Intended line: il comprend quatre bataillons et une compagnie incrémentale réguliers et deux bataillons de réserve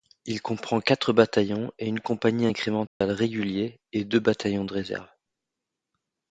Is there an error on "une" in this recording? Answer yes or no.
no